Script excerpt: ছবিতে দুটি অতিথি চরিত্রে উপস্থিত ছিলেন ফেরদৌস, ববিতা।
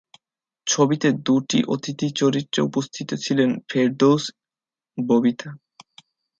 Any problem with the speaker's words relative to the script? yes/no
no